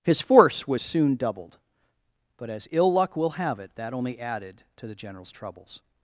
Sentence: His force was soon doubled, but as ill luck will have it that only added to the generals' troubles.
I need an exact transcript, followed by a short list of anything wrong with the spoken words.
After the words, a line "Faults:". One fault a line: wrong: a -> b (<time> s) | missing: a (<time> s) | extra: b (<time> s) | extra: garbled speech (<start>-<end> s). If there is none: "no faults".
His force was soon doubled, but as ill luck will have it that only added to the generals' troubles.
Faults:
no faults